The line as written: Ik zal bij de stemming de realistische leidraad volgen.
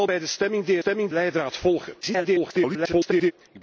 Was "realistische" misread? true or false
true